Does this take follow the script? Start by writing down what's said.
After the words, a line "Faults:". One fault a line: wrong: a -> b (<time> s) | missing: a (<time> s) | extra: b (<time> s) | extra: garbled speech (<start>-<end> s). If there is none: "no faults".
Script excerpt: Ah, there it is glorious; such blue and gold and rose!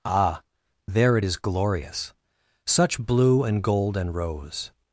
Ah, there it is glorious; such blue and gold and rose!
Faults:
no faults